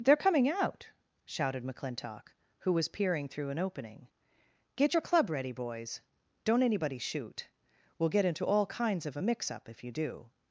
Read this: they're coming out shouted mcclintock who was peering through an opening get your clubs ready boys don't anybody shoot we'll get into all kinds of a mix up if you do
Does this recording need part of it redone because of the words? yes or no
yes